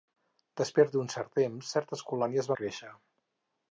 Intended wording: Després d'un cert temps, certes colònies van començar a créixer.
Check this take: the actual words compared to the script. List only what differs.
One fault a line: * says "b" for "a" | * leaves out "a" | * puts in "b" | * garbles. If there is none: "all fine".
* leaves out "van començar"